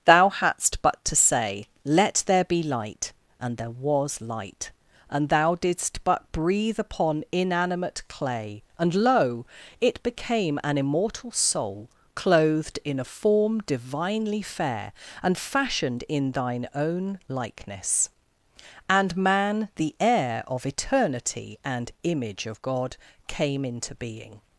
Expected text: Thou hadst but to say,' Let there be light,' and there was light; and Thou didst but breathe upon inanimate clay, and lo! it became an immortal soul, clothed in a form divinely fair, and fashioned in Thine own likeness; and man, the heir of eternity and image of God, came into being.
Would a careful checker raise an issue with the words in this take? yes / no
no